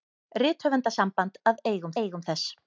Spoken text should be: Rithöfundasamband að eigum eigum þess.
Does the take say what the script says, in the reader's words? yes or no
yes